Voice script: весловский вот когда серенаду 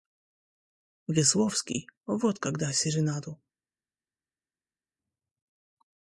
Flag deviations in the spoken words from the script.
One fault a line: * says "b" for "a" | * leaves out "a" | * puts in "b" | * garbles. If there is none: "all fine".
all fine